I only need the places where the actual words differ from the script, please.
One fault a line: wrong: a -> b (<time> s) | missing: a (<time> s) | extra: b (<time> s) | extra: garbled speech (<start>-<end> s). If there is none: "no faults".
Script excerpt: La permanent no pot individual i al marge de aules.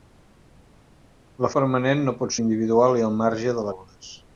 no faults